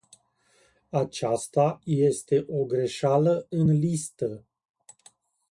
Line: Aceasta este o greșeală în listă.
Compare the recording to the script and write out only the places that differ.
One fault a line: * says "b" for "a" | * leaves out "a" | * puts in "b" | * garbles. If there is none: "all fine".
all fine